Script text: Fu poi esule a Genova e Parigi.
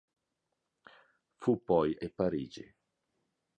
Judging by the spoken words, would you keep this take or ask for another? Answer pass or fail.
fail